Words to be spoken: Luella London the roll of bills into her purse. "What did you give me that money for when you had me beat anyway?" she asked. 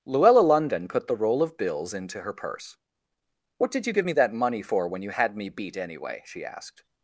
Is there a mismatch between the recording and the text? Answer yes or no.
yes